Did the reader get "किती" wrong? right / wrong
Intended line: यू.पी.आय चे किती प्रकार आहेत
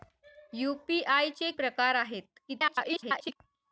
wrong